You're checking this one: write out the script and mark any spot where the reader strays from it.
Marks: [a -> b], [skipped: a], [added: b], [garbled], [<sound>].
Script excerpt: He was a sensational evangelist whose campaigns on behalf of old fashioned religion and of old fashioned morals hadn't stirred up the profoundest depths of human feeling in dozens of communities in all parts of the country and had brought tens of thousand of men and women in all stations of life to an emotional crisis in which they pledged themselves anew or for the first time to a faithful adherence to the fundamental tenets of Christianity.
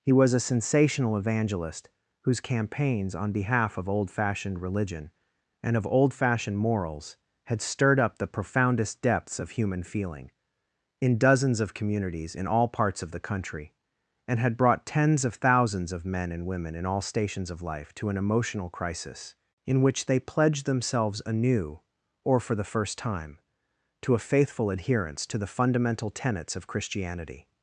He was a sensational evangelist whose campaigns on behalf of old fashioned religion and of old fashioned morals [hadn't -> had] stirred up the profoundest depths of human feeling in dozens of communities in all parts of the country and had brought tens of [thousand -> thousands] of men and women in all stations of life to an emotional crisis in which they pledged themselves anew or for the first time to a faithful adherence to the fundamental tenets of Christianity.